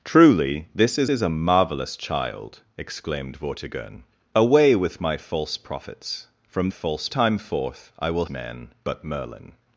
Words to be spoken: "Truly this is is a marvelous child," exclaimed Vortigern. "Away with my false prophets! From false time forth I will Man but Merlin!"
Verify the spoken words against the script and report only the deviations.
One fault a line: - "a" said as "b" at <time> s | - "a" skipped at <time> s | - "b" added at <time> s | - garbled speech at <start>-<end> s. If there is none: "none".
none